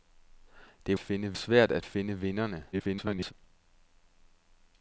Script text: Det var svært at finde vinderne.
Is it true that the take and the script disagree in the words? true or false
true